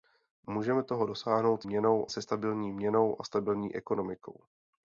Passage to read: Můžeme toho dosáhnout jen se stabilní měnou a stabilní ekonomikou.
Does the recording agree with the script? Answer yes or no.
no